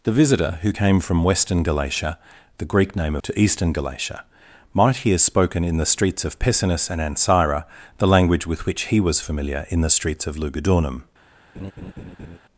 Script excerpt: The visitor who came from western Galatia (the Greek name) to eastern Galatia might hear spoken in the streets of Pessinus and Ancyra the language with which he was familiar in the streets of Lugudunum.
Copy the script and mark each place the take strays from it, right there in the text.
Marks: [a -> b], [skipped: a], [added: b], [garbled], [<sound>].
The visitor who came from western Galatia (the Greek name) to eastern Galatia might hear spoken in the streets of Pessinus and Ancyra the language with which he was familiar in the streets of Lugudunum. [laugh]